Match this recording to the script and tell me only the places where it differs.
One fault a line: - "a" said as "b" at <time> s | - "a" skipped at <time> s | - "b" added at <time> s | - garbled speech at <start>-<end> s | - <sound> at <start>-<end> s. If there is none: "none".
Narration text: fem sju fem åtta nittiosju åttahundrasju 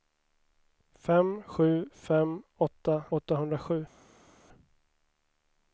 - "nittiosju" skipped at 3.0 s